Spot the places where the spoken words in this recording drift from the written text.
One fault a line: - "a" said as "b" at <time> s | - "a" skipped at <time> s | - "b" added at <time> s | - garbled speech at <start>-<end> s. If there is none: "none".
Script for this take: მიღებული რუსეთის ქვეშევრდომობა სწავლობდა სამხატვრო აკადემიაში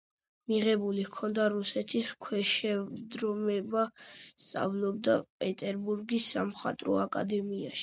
- "ჰქონდა" added at 1.1 s
- "პეტერბურგის" added at 5.5 s